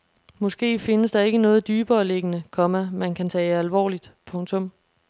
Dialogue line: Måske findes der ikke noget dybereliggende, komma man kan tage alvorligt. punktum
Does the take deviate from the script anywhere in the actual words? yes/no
no